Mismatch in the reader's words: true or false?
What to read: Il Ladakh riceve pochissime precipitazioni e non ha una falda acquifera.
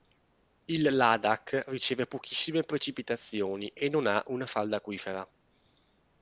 false